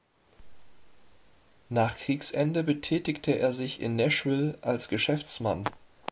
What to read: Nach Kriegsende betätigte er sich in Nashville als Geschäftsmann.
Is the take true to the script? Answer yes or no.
yes